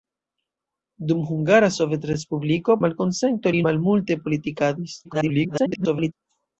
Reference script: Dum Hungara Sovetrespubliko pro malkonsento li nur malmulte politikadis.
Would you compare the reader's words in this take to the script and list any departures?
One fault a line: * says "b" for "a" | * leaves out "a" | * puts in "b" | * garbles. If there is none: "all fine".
* leaves out "pro"
* leaves out "nur"
* garbles